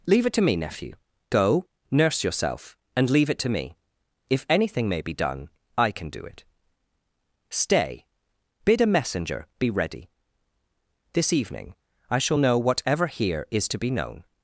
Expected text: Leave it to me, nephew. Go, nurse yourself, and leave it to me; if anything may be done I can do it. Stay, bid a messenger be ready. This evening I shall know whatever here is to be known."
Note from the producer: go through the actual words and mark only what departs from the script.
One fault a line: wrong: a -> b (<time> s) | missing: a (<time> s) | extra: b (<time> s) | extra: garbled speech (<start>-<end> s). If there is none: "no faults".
no faults